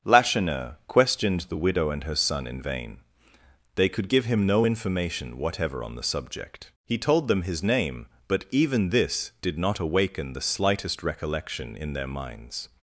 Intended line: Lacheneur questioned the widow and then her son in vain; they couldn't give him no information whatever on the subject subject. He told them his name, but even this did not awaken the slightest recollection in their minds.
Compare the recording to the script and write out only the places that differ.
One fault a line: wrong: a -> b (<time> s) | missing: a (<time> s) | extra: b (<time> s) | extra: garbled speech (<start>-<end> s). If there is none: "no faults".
missing: then (2.0 s)
wrong: couldn't -> could (3.9 s)
missing: subject (6.7 s)